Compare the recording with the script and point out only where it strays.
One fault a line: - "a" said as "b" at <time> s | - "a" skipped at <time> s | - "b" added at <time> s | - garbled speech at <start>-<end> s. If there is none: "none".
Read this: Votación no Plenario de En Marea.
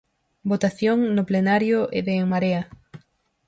none